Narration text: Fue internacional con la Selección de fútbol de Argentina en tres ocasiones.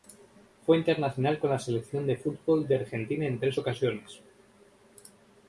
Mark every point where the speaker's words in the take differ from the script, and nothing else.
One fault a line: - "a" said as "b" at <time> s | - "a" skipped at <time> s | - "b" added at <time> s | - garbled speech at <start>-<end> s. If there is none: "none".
none